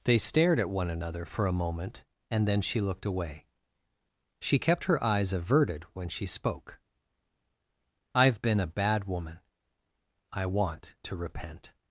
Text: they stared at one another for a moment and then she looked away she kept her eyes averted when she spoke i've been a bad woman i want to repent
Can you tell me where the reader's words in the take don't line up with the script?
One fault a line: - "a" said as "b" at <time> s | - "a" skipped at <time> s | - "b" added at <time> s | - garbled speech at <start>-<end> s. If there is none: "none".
none